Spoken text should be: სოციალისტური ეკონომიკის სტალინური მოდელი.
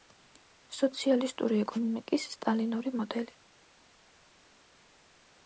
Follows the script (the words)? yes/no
yes